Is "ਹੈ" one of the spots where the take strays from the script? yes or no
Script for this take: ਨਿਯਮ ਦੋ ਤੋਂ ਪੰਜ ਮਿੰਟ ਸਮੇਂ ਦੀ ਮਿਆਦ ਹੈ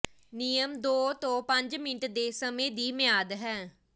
no